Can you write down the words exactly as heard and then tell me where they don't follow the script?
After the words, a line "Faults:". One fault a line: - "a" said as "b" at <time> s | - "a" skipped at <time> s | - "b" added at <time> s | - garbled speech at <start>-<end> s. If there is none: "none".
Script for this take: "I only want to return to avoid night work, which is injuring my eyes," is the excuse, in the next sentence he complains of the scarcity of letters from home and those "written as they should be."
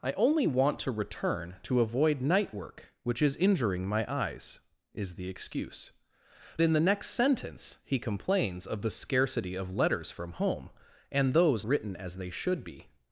"I only want to return to avoid night work, which is injuring my eyes," is the excuse, in the next sentence he complains of the scarcity of letters from home and those "written as they should be."
Faults:
none